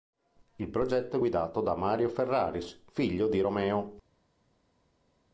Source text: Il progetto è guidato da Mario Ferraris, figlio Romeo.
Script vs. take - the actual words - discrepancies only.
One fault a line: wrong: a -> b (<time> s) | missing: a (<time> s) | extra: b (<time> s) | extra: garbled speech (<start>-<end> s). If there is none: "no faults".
extra: di (3.3 s)